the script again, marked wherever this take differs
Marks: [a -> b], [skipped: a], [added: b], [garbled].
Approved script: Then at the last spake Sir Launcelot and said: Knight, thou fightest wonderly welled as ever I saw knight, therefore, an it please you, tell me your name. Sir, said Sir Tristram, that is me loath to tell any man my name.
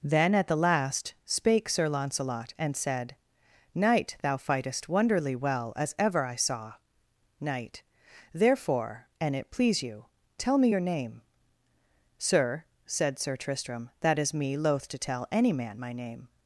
Then at the last spake Sir Launcelot and said: Knight, thou fightest wonderly [welled -> well] as ever I saw knight, therefore, an it please you, tell me your name. Sir, said Sir Tristram, that is me loath to tell any man my name.